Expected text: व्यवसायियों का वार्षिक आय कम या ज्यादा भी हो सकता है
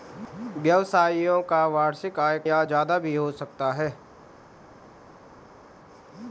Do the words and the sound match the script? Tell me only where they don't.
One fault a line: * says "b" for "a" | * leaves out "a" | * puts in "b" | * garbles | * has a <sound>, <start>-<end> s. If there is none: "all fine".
* leaves out "कम"